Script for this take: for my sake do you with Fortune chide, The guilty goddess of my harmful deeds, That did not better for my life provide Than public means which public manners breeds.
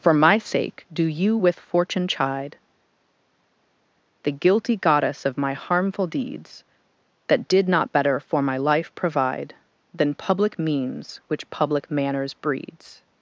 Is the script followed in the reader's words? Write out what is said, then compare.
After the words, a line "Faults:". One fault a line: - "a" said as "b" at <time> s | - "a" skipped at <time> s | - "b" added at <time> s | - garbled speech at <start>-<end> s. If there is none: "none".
for my sake do you with Fortune chide, The guilty goddess of my harmful deeds, That did not better for my life provide Than public means which public manners breeds.
Faults:
none